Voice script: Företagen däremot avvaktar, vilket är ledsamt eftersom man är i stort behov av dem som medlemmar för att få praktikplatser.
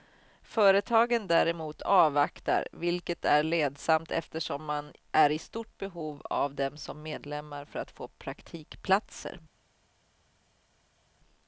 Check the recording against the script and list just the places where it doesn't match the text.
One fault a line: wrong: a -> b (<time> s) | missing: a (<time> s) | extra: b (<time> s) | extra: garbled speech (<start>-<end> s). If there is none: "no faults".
no faults